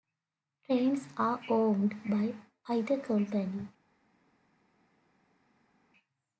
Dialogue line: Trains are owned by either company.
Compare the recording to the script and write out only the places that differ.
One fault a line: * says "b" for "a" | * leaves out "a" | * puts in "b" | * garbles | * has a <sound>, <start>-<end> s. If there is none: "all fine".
all fine